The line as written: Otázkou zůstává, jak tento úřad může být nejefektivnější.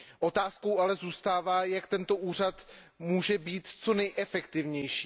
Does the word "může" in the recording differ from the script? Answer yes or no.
no